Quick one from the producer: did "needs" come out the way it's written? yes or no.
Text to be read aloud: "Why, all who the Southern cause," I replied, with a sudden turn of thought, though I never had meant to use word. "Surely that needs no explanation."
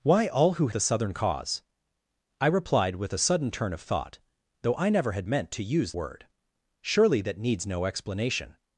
yes